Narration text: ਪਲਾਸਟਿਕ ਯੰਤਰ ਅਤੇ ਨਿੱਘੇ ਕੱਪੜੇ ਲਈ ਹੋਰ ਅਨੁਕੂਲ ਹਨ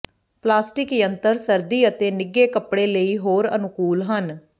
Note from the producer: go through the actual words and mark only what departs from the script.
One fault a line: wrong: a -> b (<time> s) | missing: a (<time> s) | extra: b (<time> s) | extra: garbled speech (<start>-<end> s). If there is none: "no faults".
extra: ਸਰਦੀ (1.4 s)